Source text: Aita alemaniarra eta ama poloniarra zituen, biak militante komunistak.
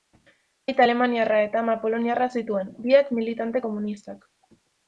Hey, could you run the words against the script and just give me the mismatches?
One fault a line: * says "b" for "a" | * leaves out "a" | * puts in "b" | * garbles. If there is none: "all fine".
all fine